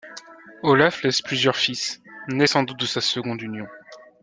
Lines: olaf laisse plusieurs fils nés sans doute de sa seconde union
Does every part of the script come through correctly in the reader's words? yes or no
yes